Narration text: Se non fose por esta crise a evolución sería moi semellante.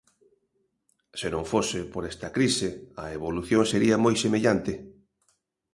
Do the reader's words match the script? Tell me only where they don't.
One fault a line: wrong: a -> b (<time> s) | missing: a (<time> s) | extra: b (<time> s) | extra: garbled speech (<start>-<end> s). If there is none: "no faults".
no faults